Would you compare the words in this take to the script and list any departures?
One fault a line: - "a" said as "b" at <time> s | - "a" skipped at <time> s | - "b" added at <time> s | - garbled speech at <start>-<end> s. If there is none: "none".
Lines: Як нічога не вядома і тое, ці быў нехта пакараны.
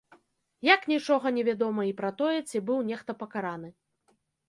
- "пра" added at 2.0 s